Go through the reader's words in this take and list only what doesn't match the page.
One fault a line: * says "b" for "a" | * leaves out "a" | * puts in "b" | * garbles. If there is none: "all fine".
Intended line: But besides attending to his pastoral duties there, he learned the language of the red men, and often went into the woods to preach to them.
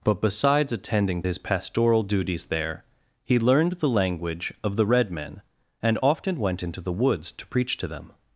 * leaves out "to"